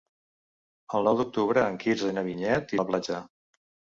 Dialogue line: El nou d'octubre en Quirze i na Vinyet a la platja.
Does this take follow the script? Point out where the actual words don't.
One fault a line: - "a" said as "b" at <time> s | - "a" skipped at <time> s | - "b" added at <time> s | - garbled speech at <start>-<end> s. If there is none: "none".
none